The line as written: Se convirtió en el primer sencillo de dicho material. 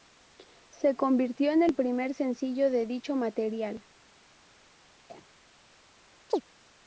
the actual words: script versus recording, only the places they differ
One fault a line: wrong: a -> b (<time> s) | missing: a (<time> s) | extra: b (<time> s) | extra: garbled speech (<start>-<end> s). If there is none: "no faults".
no faults